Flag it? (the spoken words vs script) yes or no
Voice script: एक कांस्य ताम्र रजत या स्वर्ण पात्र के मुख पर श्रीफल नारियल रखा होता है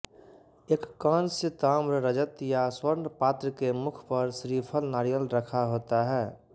no